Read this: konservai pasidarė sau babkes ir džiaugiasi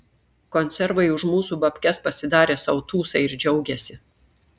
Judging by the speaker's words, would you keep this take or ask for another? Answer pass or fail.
fail